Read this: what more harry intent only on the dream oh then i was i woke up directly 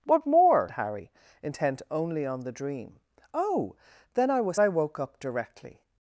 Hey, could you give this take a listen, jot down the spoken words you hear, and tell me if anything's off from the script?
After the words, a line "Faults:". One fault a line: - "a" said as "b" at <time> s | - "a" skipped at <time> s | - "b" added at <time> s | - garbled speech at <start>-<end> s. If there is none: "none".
what more harry intent only on the dream oh then i was i woke up directly
Faults:
none